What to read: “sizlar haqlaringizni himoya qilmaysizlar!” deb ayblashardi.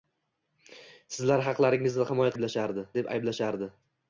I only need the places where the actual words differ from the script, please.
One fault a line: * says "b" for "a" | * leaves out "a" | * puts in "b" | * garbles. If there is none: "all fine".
* says "ayblashardi" for "qilmaysizlar"